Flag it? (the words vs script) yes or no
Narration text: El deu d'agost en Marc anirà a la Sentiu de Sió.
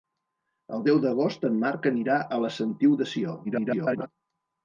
yes